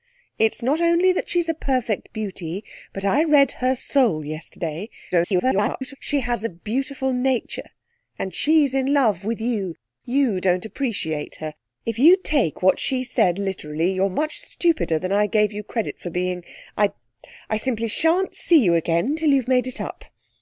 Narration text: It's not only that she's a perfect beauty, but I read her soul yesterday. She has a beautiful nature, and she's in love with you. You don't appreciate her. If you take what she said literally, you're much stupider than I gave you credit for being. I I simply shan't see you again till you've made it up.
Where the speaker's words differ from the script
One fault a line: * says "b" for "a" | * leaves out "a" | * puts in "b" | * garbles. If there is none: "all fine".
* garbles